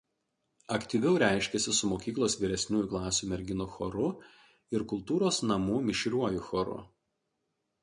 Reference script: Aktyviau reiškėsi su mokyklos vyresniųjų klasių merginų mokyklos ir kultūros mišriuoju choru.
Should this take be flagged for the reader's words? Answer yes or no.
yes